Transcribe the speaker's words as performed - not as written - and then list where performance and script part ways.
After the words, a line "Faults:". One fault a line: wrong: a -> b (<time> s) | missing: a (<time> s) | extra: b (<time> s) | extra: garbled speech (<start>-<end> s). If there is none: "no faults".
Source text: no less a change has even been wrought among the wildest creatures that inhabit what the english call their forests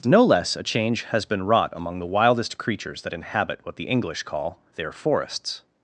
no less a change has been wrought among the wildest creatures that inhabit what the english call their forests
Faults:
missing: even (1.2 s)